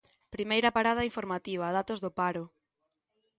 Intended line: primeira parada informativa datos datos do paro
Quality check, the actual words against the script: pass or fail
fail